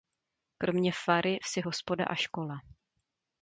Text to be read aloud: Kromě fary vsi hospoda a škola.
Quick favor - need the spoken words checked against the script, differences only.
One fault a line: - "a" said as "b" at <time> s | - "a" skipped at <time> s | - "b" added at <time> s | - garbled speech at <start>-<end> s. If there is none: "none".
none